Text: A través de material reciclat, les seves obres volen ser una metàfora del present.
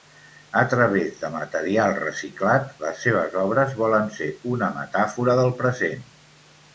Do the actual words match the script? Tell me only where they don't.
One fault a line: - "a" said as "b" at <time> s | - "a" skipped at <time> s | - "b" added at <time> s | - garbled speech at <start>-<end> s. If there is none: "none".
none